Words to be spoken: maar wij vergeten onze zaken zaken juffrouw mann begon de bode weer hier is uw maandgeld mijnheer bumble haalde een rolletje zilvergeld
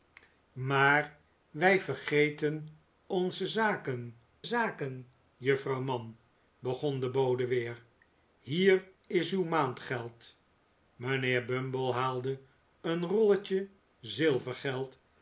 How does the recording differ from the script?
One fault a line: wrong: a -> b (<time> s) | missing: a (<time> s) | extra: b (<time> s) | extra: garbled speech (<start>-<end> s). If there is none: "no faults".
no faults